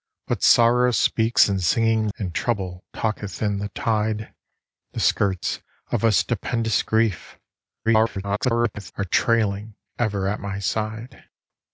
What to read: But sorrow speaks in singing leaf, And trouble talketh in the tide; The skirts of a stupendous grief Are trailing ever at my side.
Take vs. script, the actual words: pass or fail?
fail